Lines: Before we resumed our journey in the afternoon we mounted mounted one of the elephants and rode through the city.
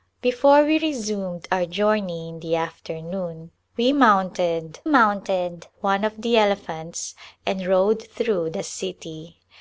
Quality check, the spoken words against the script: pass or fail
pass